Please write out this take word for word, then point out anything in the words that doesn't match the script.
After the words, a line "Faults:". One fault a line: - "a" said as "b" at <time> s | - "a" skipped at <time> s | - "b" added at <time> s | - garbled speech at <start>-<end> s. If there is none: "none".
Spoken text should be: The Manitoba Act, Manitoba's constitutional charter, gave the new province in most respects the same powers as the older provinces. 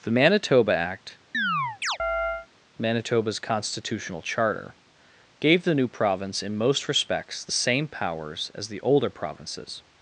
The Manitoba Act, Manitoba's constitutional charter, gave the new province in most respects the same powers as the older provinces.
Faults:
none